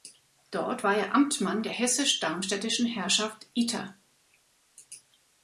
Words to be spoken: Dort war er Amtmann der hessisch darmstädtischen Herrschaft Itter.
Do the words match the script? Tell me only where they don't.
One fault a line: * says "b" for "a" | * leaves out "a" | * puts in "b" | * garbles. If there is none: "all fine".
all fine